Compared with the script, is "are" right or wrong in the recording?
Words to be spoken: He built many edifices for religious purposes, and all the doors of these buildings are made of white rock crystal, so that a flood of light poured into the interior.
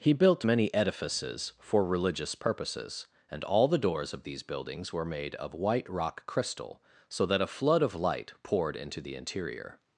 wrong